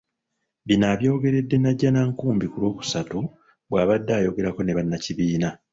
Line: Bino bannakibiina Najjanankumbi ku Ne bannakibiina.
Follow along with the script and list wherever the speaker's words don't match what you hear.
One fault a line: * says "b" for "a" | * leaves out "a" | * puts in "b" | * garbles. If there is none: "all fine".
* says "abyogeredde" for "bannakibiina"
* puts in "Lwokusatu bw'abadde ayogerako"